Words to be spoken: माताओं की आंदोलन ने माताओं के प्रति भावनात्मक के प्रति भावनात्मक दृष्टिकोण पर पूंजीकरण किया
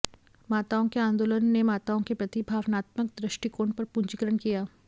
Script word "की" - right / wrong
wrong